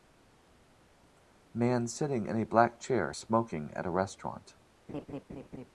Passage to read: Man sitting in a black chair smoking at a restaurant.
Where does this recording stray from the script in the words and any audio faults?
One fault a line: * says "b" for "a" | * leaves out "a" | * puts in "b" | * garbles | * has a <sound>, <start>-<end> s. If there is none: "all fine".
* has a laugh, 4.9-5.7 s